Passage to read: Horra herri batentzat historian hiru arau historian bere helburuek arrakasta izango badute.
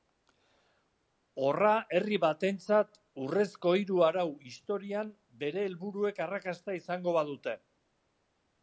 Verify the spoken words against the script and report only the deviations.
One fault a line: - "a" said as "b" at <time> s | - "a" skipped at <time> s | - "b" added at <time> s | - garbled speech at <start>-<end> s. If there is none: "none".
- "historian" said as "urrezko" at 3.2 s